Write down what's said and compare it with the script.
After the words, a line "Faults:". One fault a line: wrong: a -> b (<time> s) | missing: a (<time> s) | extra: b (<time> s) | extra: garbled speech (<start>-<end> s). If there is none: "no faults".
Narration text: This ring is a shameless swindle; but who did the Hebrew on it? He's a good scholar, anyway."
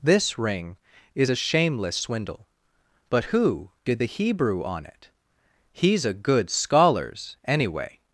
This ring is a shameless swindle; but who did the Hebrew on it? He's a good scholars, anyway."
Faults:
wrong: scholar -> scholars (6.5 s)